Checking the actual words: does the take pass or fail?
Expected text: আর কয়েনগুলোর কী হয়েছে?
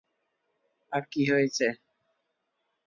fail